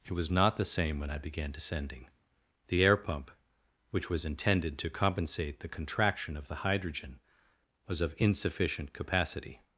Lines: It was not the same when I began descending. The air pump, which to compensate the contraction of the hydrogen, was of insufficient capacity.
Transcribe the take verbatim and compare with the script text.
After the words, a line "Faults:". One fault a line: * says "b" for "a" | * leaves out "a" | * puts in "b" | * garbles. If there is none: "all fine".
It was not the same when I began descending. The air pump, which was intended to compensate the contraction of the hydrogen, was of insufficient capacity.
Faults:
* puts in "was intended"